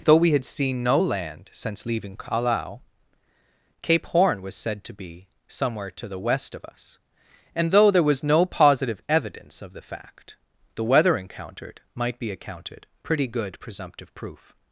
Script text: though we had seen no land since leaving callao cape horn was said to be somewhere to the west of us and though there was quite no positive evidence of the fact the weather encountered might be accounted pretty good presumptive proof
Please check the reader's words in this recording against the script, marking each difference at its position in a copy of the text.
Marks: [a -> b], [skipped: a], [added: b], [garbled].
though we had seen no land since leaving callao cape horn was said to be somewhere to the west of us and though there was [skipped: quite] no positive evidence of the fact the weather encountered might be accounted pretty good presumptive proof